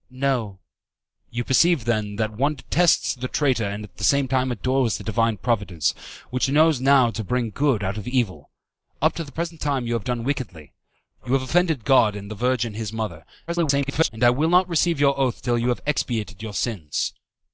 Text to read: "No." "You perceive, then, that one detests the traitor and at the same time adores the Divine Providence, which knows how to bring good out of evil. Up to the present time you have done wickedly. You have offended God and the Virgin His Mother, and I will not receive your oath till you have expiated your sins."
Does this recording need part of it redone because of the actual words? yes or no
yes